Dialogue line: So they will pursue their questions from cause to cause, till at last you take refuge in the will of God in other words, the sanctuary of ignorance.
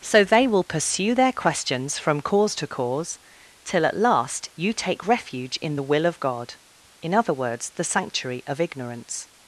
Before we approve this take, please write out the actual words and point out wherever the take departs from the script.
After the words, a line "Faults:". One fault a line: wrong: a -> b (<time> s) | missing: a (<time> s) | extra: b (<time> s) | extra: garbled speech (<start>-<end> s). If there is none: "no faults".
So they will pursue their questions from cause to cause, till at last you take refuge in the will of God in other words, the sanctuary of ignorance.
Faults:
no faults